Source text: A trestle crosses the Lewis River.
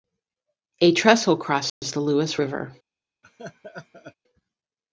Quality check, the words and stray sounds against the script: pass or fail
fail